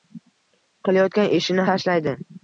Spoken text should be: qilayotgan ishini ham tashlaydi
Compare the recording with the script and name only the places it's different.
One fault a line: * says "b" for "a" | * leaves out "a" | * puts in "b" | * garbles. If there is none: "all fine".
* leaves out "ham"